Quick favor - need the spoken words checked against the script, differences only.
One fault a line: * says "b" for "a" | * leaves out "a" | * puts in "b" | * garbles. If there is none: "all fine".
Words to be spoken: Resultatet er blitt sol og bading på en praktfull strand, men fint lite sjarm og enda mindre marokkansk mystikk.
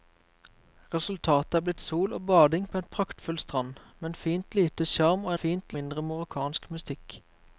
* says "fint" for "enda"